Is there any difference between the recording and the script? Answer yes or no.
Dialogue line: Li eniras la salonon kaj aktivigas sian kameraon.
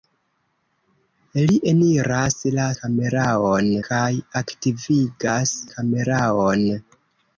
yes